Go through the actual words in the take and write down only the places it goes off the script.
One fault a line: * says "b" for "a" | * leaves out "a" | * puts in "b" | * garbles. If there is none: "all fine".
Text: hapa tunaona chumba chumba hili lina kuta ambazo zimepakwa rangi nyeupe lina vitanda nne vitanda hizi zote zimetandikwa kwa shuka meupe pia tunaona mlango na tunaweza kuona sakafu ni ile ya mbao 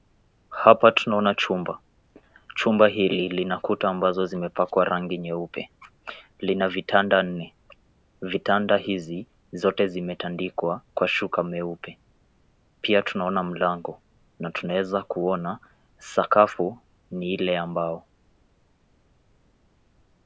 all fine